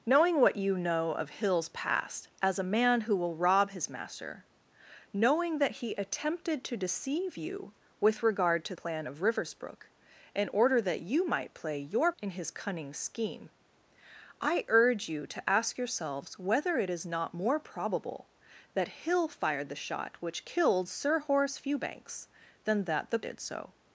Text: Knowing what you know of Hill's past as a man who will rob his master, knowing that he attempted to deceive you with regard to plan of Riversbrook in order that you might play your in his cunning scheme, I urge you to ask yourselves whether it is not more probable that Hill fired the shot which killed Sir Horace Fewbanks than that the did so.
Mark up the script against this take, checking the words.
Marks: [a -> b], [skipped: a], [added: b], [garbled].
Knowing what you know of Hill's past as a man who will rob his master, knowing that he attempted to deceive you with regard to plan of Riversbrook in order that you might play your in his cunning scheme, I urge you to ask yourselves whether it is not more probable that Hill fired the shot which killed Sir Horace Fewbanks than that the did so.